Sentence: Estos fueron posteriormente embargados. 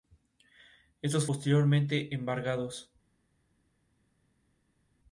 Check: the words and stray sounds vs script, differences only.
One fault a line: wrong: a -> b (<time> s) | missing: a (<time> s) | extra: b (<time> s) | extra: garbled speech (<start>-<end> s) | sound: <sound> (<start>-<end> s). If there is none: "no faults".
missing: fueron (1.3 s)